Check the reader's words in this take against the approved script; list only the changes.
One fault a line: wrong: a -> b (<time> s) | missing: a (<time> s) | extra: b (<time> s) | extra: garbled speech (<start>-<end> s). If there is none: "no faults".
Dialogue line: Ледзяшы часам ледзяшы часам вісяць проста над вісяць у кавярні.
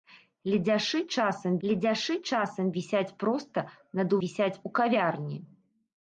no faults